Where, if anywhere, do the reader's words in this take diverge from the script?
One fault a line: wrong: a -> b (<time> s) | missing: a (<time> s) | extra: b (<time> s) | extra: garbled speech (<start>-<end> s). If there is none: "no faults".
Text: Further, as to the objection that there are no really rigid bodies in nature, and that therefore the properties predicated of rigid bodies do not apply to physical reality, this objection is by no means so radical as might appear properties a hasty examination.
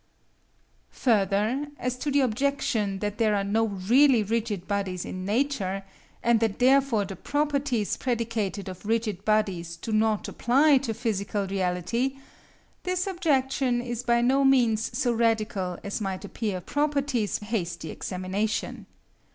no faults